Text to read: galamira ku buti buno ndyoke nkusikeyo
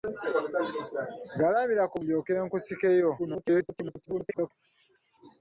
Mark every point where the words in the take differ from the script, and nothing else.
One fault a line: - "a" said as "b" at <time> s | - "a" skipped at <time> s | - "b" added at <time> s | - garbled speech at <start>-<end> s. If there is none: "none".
- "buti buno" skipped at 2.0 s
- garbled speech at 3.2-4.5 s